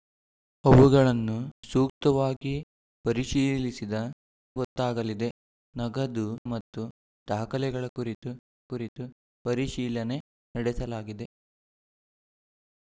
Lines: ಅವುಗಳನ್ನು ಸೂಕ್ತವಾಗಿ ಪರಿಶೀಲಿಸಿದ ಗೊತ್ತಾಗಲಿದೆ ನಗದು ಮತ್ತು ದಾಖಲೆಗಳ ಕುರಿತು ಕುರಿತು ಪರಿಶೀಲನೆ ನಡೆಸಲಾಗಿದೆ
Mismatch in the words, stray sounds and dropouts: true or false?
false